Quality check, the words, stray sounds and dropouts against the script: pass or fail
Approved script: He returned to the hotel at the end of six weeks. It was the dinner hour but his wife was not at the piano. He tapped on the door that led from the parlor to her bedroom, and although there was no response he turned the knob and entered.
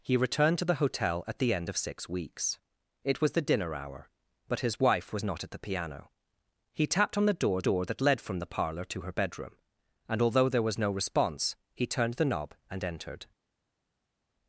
fail